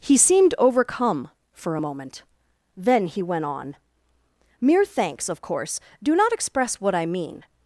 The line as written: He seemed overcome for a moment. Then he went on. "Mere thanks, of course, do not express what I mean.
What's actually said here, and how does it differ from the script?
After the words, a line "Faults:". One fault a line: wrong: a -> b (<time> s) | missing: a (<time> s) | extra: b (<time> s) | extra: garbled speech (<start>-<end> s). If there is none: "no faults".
He seemed overcome for a moment. Then he went on. "Mere thanks, of course, do not express what I mean.
Faults:
no faults